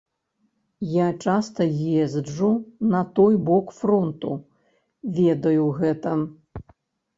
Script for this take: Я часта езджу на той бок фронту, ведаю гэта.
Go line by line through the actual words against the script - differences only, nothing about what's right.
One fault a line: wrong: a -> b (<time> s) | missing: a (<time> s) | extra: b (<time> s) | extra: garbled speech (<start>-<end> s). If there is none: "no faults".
no faults